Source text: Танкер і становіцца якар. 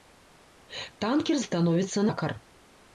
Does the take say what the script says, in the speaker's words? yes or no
yes